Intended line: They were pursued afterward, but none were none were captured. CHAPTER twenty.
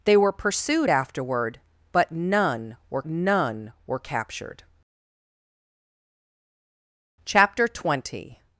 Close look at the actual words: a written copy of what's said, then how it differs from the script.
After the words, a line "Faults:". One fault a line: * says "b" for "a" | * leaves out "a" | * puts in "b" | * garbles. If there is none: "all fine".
They were pursued afterward, but none were none were captured. CHAPTER twenty.
Faults:
all fine